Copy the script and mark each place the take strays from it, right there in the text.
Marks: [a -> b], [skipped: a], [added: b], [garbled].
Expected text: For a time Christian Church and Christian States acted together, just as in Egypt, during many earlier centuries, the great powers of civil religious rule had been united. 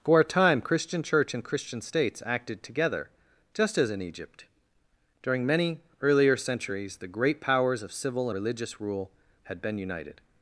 For a time Christian Church and Christian States acted together, just as in Egypt, during many earlier centuries, the great powers of civil religious rule had been united.